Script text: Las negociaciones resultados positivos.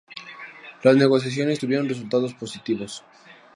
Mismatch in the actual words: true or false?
true